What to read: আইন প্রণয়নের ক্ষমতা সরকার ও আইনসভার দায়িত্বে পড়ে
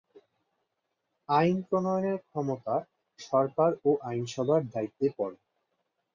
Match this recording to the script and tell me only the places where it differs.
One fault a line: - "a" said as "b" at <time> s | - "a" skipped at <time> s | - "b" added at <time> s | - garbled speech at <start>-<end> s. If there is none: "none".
none